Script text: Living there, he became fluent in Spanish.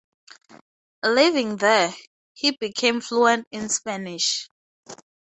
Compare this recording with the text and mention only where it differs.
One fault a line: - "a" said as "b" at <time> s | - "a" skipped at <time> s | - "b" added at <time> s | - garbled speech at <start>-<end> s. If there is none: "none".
none